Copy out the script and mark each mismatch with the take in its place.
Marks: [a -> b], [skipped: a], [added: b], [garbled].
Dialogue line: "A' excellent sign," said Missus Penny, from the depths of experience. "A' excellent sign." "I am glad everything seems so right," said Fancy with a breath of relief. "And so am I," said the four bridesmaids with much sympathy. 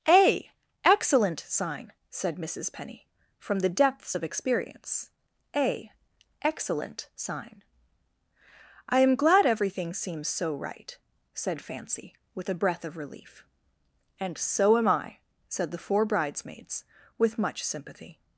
"A' excellent sign," said Missus Penny, from the depths of experience. "A' excellent sign." "I am glad everything seems so right," said Fancy with a breath of relief. "And so am I," said the four bridesmaids with much sympathy.